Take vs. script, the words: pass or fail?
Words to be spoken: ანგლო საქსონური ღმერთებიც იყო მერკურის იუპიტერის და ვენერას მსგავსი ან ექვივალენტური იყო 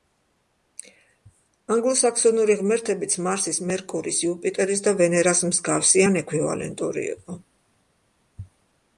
fail